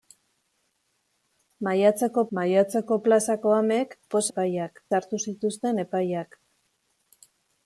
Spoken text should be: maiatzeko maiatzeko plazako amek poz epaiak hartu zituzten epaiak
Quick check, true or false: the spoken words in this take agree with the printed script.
true